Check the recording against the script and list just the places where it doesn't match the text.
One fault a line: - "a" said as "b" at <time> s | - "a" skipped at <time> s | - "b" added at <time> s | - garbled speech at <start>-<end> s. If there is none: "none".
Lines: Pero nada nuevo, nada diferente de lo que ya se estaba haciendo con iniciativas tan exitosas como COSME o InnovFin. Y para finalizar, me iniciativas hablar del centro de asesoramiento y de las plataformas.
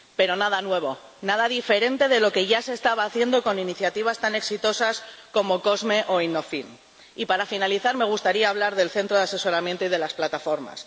- "iniciativas" said as "gustaría" at 8.0 s